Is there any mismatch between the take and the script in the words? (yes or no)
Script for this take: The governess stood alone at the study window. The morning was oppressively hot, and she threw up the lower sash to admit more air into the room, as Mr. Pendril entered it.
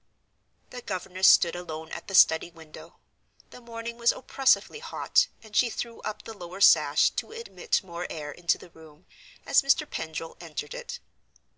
no